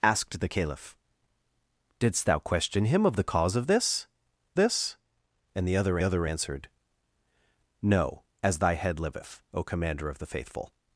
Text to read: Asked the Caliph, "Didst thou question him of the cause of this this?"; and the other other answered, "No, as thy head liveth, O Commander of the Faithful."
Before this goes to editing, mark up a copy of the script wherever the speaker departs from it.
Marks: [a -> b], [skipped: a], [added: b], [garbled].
Asked the Caliph, "Didst thou question him of the cause of this this?"; and the other other answered, "No, as thy head liveth, O Commander of the Faithful."